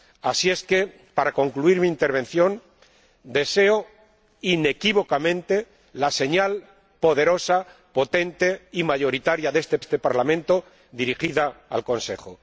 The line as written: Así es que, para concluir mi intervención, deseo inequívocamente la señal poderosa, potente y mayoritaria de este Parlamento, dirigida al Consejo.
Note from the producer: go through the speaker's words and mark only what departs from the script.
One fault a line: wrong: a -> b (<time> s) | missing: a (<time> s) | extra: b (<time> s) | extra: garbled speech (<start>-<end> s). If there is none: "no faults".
extra: este (9.8 s)